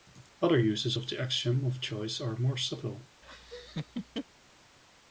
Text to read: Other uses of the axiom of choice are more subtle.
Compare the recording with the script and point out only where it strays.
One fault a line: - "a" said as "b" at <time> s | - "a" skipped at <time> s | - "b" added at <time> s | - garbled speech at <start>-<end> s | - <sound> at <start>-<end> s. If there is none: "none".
- laugh at 3.2-4.2 s